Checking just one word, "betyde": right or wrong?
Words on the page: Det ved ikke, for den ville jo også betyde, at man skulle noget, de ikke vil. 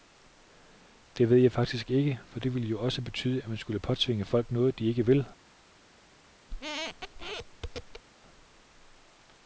right